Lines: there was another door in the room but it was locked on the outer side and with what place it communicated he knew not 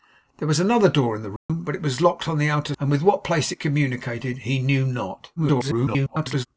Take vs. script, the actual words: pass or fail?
fail